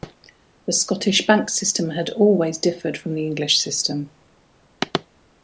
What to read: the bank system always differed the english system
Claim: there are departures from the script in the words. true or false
true